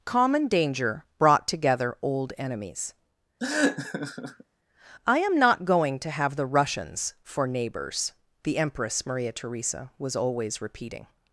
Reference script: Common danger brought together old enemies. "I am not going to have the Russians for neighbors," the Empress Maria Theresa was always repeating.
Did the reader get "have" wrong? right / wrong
right